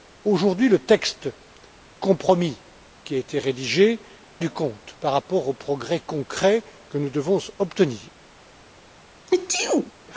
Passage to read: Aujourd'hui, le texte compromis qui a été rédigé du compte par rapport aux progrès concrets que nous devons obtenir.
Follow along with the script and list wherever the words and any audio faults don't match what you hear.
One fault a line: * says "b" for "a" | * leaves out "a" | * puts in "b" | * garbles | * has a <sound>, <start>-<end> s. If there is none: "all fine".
* has a sneeze, 9.3-9.9 s